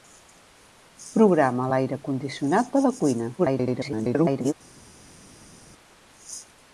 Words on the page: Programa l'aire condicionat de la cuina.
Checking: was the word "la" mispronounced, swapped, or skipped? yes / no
no